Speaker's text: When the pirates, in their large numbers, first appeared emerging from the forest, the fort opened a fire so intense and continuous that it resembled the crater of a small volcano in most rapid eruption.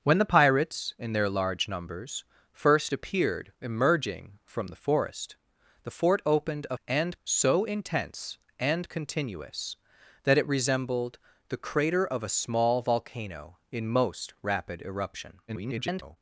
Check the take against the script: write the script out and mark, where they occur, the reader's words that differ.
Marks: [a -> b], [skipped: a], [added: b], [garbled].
When the pirates, in their large numbers, first appeared emerging from the forest, the fort opened a [fire -> and] so intense and continuous that it resembled the crater of a small volcano in most rapid eruption. [garbled]